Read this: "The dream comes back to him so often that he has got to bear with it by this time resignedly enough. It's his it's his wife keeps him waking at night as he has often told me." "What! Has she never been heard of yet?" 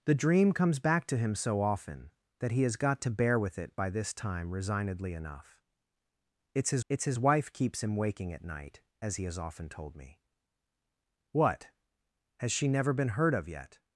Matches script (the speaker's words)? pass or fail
pass